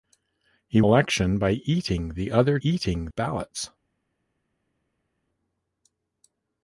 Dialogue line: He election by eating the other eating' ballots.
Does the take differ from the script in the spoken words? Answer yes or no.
no